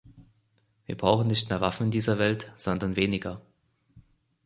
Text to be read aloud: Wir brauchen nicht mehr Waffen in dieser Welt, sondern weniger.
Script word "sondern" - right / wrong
right